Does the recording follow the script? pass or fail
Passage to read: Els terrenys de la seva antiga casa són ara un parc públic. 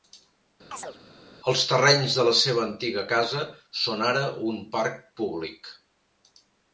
pass